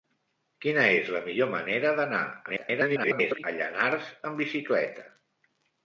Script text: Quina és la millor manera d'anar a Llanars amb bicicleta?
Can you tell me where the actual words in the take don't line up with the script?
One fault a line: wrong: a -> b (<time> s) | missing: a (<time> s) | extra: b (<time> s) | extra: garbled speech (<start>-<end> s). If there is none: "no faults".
extra: garbled speech (2.5-3.4 s)